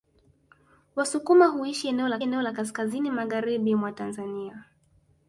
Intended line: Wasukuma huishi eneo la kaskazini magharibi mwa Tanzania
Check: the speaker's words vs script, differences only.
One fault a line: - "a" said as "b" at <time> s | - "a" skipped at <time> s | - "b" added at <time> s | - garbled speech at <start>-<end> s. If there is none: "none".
- "eneo la" added at 2.2 s